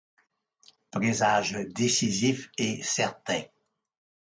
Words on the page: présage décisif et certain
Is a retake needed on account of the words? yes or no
no